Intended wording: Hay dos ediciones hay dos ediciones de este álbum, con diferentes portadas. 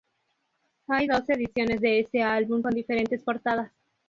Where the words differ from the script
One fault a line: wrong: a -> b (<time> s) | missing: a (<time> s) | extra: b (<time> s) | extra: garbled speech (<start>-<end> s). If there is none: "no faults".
missing: hay dos ediciones (1.8 s)